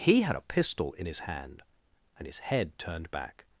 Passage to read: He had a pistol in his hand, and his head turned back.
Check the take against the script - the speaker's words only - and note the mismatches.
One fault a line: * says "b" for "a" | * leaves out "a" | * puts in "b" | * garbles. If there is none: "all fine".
all fine